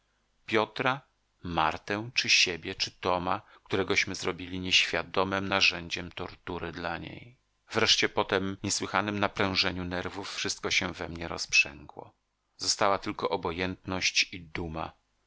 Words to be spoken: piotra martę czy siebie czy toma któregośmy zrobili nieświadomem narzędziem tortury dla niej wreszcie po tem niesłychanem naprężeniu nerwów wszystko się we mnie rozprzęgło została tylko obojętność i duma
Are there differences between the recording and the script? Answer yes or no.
no